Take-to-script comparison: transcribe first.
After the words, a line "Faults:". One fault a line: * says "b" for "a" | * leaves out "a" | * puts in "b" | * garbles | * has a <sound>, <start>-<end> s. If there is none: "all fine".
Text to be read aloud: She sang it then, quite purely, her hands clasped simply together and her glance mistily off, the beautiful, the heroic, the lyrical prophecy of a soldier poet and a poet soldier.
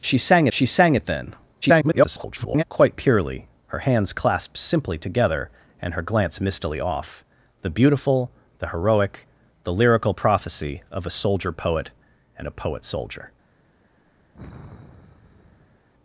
She sang she sang it then, [garbled] quite purely, her hands clasped simply together and her glance mistily off, the beautiful, the heroic, the lyrical prophecy of a soldier poet and a poet soldier.
Faults:
* puts in "she sang"
* garbles
* has a sigh, 14.3-15.9 s